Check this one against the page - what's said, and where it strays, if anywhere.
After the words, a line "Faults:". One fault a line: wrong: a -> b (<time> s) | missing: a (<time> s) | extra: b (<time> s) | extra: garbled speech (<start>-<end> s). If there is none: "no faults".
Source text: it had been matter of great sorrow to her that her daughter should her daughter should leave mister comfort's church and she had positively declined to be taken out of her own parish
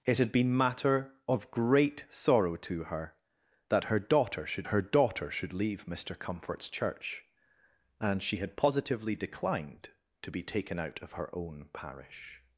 it had been matter of great sorrow to her that her daughter should her daughter should leave mister comfort's church and she had positively declined to be taken out of her own parish
Faults:
no faults